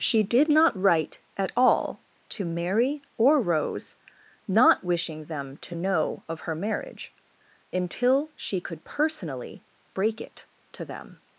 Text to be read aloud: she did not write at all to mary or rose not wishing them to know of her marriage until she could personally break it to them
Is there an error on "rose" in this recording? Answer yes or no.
no